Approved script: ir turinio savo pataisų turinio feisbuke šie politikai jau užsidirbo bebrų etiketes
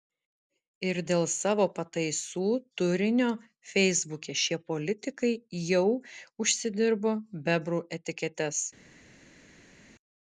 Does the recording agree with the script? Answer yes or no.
no